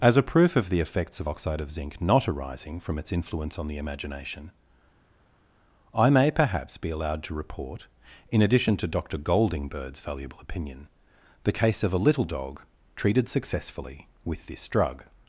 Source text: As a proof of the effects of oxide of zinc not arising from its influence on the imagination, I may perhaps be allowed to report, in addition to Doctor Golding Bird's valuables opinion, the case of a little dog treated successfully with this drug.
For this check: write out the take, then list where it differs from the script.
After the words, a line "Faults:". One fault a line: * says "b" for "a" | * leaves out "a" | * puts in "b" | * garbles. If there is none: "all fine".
As a proof of the effects of oxide of zinc not arising from its influence on the imagination, I may perhaps be allowed to report, in addition to Doctor Golding Bird's valuable opinion, the case of a little dog treated successfully with this drug.
Faults:
* says "valuable" for "valuables"